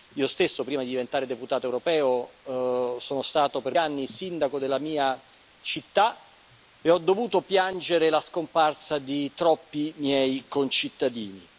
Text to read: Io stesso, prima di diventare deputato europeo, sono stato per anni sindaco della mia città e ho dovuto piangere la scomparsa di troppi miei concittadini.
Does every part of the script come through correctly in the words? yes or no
yes